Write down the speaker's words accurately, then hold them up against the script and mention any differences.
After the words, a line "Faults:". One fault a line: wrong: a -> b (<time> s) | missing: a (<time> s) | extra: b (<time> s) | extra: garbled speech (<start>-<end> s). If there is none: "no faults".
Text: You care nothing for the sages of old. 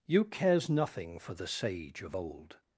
You cares nothing for the sage of old.
Faults:
wrong: care -> cares (0.2 s)
wrong: sages -> sage (1.5 s)